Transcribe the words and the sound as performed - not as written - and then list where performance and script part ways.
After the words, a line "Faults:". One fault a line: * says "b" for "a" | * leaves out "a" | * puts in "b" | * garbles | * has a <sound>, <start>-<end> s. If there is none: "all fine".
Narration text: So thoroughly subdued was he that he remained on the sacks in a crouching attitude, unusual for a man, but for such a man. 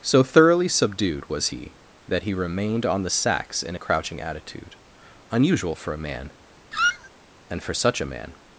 So thoroughly subdued was he that he remained on the sacks in a crouching attitude, unusual for a man, and for such a man.
Faults:
* has a squeak, 6.7-7.1 s
* says "and" for "but"